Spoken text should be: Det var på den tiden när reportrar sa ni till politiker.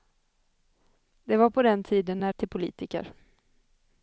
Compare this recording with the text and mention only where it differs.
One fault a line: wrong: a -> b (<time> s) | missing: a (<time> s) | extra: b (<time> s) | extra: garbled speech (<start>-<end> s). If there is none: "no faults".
missing: reportrar sa ni (2.3 s)